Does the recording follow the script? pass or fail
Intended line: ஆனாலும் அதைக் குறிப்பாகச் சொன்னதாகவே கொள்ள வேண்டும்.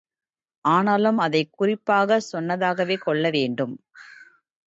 pass